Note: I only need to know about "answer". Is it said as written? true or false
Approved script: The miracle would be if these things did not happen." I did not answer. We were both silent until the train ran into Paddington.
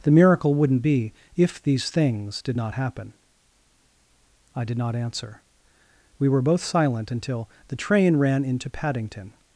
true